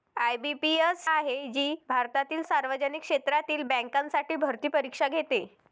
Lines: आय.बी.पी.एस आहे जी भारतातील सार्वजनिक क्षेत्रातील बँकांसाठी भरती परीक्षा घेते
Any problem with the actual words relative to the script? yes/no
no